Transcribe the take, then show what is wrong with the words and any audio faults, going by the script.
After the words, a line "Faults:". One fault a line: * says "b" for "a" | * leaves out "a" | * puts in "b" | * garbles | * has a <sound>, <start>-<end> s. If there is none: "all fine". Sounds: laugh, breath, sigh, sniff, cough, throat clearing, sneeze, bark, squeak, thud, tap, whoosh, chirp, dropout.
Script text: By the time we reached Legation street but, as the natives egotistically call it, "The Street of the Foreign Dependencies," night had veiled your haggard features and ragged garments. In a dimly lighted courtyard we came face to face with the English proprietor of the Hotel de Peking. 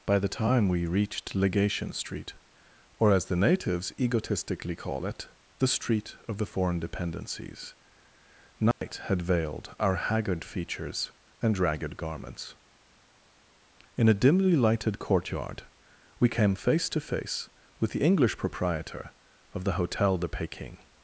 By the time we reached Legation street or, as the natives egotistically call it, "The Street of the Foreign Dependencies," night had veiled our haggard features and ragged garments. In a dimly lighted courtyard we came face to face with the English proprietor of the Hotel de Peking.
Faults:
* says "or" for "but"
* has a dropout, 8.7-8.8 s
* says "our" for "your"